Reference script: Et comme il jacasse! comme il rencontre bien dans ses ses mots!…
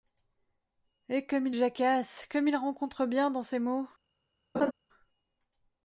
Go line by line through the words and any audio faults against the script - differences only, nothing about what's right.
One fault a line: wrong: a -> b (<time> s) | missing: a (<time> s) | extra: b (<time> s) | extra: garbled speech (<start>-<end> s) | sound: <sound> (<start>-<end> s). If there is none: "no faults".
missing: ses (3.6 s)
sound: laugh (4.5-4.7 s)